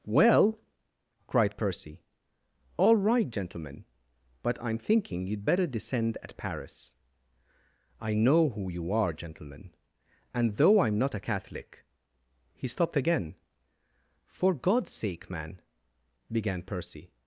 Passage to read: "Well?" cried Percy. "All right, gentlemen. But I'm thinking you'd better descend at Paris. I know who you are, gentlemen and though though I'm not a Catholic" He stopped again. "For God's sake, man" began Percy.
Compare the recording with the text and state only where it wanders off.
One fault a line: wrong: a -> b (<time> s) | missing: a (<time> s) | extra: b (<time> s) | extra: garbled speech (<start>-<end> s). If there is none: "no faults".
missing: though (10.8 s)